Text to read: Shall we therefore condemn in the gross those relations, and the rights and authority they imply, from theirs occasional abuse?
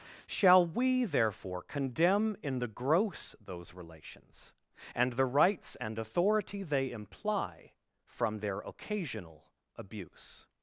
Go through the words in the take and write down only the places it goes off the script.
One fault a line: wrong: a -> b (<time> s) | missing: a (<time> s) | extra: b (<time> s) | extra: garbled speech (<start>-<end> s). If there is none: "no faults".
wrong: theirs -> their (8.4 s)